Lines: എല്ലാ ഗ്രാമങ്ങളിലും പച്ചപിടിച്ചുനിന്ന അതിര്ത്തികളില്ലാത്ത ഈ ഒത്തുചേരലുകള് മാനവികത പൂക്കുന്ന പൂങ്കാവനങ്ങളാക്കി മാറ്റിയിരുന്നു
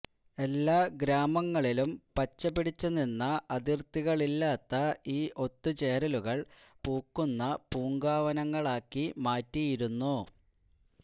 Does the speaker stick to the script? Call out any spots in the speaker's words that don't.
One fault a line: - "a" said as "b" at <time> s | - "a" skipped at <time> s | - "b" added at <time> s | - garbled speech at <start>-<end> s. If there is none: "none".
- "മാനവികത" skipped at 6.4 s